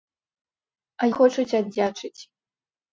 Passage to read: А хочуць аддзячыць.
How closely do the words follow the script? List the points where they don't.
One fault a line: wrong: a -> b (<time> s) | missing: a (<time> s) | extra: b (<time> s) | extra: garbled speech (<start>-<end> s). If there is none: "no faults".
no faults